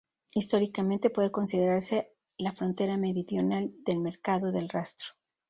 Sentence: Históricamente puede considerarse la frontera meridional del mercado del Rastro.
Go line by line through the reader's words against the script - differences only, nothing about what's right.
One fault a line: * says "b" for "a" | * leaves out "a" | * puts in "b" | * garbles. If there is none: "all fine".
all fine